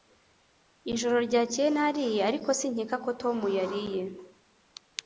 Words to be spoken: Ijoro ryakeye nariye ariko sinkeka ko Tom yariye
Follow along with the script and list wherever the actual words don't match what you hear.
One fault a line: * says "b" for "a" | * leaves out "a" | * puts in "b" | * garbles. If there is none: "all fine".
all fine